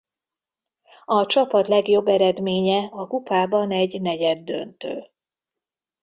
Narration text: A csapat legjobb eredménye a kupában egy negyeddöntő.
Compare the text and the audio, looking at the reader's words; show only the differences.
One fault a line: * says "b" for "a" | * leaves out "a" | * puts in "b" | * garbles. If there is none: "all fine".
all fine